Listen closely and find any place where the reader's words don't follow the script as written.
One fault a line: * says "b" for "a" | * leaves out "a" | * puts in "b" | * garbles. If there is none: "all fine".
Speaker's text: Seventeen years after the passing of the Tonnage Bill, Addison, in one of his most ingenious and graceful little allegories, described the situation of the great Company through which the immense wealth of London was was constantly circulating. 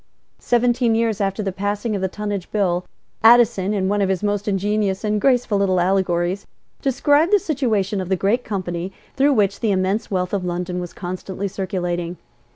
* leaves out "was"